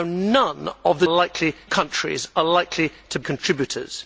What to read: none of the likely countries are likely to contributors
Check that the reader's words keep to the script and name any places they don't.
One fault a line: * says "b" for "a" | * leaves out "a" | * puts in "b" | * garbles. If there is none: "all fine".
all fine